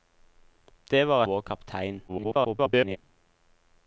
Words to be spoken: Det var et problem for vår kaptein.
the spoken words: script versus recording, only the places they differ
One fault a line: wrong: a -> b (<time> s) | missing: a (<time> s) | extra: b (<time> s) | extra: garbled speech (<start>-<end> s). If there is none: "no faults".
missing: et problem for (1.2 s)
extra: garbled speech (2.1-3.0 s)